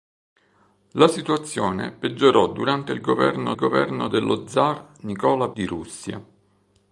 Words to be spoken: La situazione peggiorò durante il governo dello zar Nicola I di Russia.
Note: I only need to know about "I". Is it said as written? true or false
false